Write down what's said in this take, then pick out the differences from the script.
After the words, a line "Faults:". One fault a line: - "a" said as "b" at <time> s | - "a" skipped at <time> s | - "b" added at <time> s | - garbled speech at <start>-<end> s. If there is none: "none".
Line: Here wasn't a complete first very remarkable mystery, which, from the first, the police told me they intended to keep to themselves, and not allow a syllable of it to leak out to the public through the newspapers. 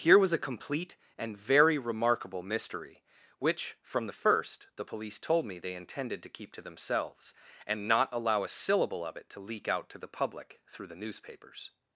Here was a complete and very remarkable mystery, which, from the first, the police told me they intended to keep to themselves, and not allow a syllable of it to leak out to the public through the newspapers.
Faults:
- "wasn't" said as "was" at 0.2 s
- "first" said as "and" at 1.1 s